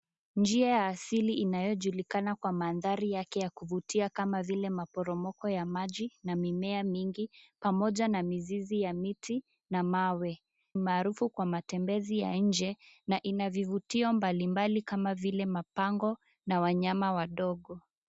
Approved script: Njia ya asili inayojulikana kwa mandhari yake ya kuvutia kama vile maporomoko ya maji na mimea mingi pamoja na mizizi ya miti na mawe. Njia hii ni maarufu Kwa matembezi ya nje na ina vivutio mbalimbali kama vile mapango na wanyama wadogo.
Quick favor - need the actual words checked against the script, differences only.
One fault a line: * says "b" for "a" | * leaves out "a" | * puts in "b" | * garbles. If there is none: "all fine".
* leaves out "Njia hii ni"